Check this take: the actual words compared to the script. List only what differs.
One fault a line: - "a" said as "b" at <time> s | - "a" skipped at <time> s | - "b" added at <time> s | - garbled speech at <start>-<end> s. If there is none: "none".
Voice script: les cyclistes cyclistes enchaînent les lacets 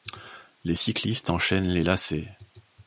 - "cyclistes" skipped at 1.3 s